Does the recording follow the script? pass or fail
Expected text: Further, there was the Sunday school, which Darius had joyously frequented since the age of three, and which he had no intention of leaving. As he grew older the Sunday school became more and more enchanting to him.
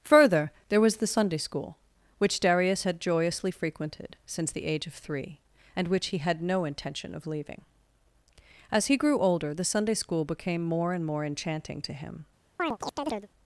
pass